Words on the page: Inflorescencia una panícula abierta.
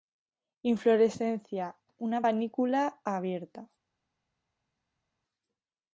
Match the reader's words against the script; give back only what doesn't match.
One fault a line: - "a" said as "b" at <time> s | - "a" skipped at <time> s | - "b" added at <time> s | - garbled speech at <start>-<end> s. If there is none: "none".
none